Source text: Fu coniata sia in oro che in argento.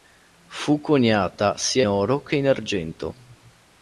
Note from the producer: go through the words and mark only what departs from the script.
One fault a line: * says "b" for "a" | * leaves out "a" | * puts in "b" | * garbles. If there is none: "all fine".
* leaves out "in"